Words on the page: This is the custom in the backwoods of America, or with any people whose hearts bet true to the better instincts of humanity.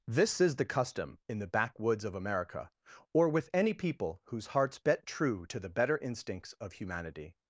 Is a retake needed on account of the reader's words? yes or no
no